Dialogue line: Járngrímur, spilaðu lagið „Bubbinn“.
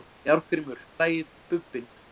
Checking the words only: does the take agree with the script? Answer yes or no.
no